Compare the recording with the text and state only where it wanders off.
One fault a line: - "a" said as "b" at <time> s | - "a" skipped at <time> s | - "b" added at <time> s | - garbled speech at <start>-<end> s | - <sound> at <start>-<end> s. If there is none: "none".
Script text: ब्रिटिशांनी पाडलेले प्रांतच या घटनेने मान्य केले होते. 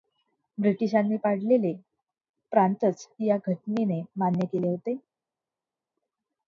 none